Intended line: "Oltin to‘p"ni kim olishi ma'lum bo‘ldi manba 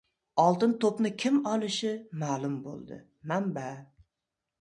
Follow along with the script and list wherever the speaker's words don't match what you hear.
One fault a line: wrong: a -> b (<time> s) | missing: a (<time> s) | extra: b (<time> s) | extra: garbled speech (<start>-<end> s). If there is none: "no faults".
no faults